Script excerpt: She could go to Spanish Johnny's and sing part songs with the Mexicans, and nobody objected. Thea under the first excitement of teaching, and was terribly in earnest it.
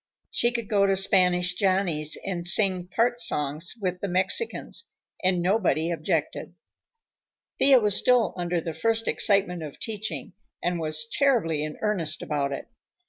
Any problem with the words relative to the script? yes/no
yes